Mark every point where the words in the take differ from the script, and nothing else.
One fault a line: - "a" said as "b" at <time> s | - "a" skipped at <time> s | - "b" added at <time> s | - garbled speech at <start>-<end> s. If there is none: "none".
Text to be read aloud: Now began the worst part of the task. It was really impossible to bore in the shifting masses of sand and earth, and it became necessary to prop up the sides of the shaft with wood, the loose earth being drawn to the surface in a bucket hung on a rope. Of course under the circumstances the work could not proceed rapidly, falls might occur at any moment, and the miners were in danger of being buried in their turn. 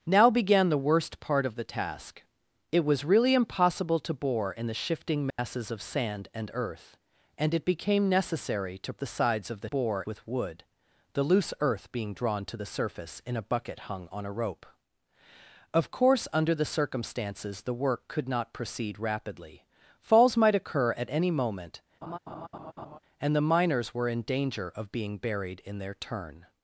- "prop up" skipped at 8.9 s
- "shaft" said as "bore" at 9.7 s